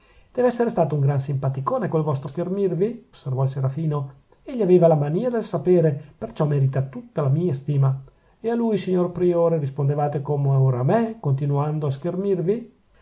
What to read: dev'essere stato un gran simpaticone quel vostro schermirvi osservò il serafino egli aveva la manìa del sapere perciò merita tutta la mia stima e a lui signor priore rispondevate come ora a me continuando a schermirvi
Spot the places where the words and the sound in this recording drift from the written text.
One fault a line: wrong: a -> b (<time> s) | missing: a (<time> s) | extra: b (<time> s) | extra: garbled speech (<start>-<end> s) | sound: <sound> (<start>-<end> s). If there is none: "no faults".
no faults